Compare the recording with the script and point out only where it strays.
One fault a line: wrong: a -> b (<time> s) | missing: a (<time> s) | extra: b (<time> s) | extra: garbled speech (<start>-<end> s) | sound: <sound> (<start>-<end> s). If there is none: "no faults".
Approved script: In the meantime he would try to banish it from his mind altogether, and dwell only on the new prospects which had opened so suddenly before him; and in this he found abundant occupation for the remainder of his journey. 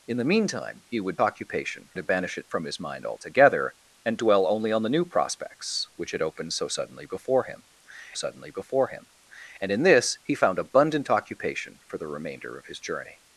wrong: try -> occupation (1.2 s)
extra: suddenly before him (8.1 s)